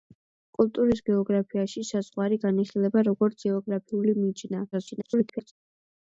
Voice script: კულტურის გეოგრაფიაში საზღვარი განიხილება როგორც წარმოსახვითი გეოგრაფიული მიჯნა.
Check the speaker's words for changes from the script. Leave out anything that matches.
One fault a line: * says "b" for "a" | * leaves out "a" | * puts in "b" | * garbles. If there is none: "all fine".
* leaves out "წარმოსახვითი"
* garbles